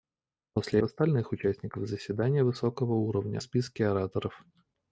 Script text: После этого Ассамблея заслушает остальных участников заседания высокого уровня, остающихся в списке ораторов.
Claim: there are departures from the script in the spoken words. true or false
true